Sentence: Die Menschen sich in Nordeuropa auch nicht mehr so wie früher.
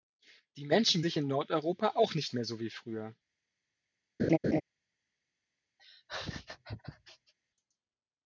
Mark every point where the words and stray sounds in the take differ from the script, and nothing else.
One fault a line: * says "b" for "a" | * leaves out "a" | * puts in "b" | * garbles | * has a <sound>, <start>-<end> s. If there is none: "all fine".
* has a laugh, 4.2-4.6 s
* has a laugh, 5.8-7.3 s